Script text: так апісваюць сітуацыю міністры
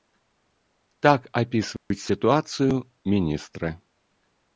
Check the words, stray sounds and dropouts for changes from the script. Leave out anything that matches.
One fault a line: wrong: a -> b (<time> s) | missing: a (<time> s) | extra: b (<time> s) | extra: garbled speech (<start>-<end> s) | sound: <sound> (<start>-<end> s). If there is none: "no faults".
sound: dropout (1.8-1.9 s)